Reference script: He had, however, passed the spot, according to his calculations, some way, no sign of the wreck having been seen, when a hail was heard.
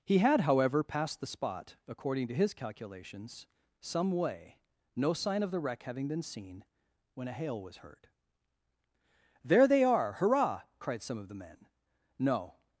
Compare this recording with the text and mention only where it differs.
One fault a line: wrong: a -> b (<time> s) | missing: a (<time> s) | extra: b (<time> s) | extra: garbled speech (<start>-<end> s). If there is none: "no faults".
extra: There they are hurrah cried some of the men No (9.4 s)